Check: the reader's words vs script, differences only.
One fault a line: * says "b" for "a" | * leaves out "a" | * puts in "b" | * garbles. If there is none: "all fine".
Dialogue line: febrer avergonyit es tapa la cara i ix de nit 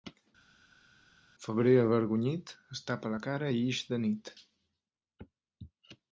all fine